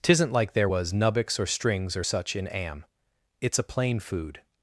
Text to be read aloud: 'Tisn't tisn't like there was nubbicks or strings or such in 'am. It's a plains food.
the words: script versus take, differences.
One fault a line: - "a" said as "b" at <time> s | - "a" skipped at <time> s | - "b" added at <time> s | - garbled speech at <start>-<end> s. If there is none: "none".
- "tisn't" skipped at 0.3 s
- "plains" said as "plain" at 3.6 s